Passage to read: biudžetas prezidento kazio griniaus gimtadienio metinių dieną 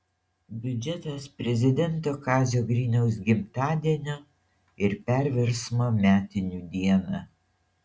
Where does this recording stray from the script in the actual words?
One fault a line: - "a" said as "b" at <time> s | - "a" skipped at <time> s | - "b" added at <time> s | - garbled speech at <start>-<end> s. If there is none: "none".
- "ir perversmo" added at 4.9 s